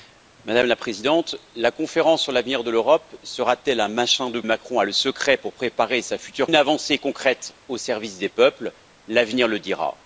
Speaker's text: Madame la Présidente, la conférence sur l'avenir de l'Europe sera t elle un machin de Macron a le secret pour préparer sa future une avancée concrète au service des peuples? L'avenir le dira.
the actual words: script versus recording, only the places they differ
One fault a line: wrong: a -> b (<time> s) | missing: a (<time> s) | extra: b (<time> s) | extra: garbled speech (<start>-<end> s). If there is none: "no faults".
no faults